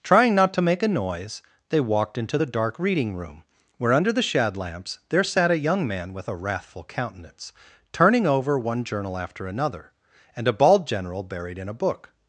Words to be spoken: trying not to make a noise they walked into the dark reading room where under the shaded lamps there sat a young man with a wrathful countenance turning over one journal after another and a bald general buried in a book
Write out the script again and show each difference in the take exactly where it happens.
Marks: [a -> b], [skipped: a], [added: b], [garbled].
trying not to make a noise they walked into the dark reading room where under the [shaded -> shad] lamps there sat a young man with a wrathful countenance turning over one journal after another and a bald general buried in a book